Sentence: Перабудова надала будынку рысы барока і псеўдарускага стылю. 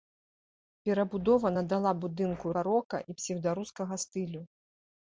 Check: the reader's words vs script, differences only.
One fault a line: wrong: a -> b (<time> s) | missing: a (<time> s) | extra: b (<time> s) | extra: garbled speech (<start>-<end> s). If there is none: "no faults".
missing: рысы (2.5 s)